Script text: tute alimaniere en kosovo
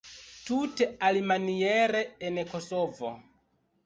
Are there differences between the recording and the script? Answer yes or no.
no